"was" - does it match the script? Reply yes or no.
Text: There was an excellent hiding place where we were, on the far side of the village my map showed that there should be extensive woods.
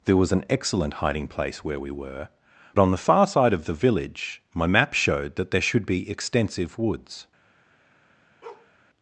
yes